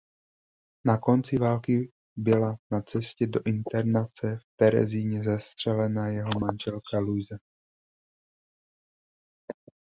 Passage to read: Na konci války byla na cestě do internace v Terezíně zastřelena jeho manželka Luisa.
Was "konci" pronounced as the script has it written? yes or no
yes